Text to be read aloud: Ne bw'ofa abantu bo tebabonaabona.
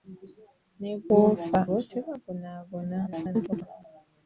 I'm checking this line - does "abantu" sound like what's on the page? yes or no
no